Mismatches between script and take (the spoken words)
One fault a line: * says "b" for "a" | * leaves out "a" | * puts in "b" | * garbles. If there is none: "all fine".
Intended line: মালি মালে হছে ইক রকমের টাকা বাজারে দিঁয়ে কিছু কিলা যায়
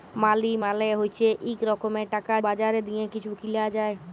all fine